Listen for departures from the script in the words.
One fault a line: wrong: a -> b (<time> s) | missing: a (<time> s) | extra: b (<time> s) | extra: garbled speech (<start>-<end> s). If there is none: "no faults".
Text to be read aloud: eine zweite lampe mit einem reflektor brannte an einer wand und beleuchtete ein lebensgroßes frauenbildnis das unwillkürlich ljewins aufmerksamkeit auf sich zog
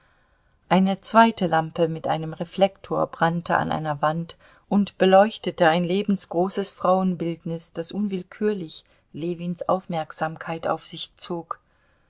no faults